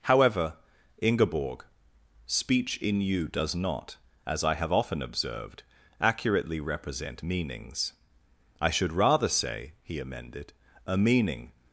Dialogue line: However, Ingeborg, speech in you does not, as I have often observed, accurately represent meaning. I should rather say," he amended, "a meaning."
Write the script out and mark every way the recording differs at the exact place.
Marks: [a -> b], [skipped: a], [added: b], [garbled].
However, Ingeborg, speech in you does not, as I have often observed, accurately represent [meaning. -> meanings] I should rather say," he amended, "a meaning."